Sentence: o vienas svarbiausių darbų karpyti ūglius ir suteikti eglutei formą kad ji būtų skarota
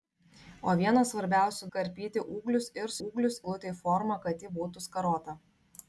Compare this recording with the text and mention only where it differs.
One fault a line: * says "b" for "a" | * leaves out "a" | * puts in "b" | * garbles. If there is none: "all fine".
* leaves out "darbų"
* says "ūglius" for "suteikti"